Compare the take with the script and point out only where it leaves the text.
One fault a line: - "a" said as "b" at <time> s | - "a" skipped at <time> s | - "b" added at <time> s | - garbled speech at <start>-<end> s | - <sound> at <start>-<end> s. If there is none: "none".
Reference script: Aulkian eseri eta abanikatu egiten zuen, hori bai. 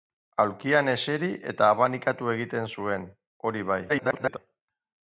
- garbled speech at 3.9-4.4 s